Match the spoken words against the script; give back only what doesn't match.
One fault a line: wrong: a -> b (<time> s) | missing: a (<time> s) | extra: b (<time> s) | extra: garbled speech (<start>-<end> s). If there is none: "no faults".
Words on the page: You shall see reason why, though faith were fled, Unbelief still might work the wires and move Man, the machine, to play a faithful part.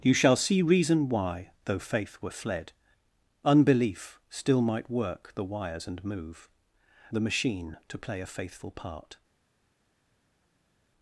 missing: Man (6.5 s)